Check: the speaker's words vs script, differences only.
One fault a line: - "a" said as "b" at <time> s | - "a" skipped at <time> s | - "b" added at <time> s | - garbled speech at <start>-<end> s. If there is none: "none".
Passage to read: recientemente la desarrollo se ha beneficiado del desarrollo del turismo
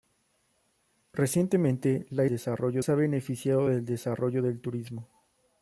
none